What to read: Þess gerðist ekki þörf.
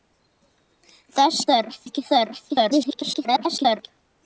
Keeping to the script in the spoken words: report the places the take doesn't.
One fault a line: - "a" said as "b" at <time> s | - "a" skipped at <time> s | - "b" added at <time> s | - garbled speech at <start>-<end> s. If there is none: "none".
- "gerðist" said as "þörf" at 1.5 s
- garbled speech at 2.5-3.9 s